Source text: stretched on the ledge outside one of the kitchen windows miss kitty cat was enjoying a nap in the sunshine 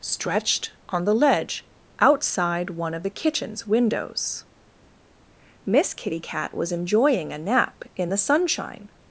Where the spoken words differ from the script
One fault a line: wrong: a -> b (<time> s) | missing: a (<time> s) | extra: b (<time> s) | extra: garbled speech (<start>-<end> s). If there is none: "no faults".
wrong: kitchen -> kitchens (3.1 s)